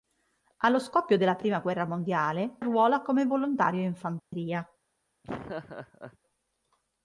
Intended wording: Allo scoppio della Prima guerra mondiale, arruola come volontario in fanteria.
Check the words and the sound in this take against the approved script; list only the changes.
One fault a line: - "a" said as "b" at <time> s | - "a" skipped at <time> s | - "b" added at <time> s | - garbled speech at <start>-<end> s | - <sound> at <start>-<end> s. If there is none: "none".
- dropout at 4.2-4.3 s
- laugh at 5.2-6.2 s